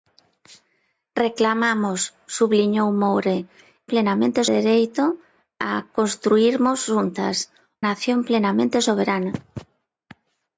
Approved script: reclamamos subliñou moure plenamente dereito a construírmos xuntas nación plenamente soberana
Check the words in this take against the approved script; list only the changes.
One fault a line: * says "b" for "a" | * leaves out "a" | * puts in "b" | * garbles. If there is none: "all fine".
all fine